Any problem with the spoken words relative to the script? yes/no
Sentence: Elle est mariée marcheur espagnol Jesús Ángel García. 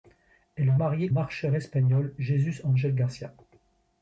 no